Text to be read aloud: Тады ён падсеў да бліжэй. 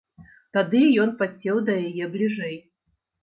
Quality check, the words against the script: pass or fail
fail